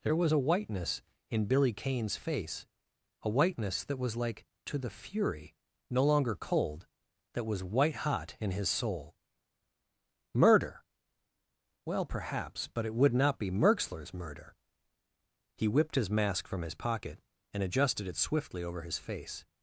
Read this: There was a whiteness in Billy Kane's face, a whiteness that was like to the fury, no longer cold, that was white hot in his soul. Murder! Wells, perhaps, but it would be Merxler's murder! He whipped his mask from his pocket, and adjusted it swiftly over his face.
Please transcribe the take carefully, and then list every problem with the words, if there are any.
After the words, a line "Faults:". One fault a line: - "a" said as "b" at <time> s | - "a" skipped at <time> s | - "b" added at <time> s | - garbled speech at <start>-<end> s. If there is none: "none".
There was a whiteness in Billy Kane's face, a whiteness that was like to the fury, no longer cold, that was white hot in his soul. Murder! Well, perhaps, but it would not be Merxler's murder! He whipped his mask from his pocket, and adjusted it swiftly over his face.
Faults:
- "Wells" said as "Well" at 11.8 s
- "not" added at 13.1 s